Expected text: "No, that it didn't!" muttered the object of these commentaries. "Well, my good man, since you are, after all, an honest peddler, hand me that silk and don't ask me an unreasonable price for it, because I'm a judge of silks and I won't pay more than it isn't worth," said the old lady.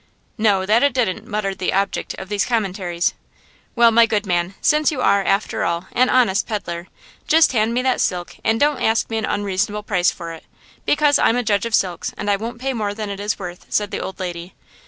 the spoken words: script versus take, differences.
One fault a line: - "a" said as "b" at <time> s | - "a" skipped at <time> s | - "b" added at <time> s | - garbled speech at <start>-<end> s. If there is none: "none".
- "just" added at 7.3 s
- "isn't" said as "is" at 13.2 s